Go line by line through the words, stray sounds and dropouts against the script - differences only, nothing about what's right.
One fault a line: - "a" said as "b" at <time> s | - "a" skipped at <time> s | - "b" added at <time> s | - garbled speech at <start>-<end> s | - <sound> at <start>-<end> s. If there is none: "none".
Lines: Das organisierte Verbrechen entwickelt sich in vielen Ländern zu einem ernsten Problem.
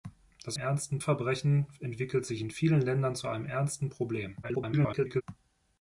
- "organisierte" said as "ernsten" at 0.6 s
- garbled speech at 4.4-5.2 s